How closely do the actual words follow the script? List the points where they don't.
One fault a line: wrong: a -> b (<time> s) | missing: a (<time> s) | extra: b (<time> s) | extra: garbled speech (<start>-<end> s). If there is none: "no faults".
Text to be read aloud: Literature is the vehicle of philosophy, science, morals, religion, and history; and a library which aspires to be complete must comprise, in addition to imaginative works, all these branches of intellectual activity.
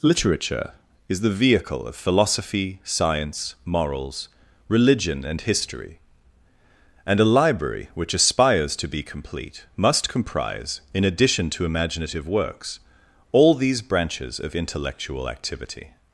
no faults